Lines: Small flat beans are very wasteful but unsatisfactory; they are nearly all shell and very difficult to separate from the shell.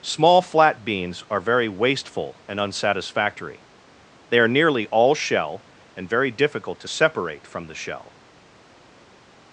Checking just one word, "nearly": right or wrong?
right